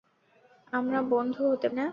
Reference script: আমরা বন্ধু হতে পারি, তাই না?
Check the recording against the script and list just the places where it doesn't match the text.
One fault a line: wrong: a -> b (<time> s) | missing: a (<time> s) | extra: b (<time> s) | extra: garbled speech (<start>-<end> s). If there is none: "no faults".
missing: পারি তাই (1.7 s)